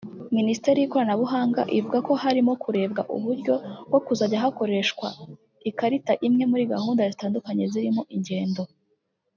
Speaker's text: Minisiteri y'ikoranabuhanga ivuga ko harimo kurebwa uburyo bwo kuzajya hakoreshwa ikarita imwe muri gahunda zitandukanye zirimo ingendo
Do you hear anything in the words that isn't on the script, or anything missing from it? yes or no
no